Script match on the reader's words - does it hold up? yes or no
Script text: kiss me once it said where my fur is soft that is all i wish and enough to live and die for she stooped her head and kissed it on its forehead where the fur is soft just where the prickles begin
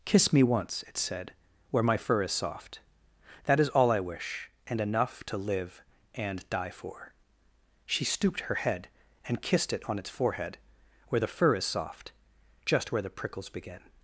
yes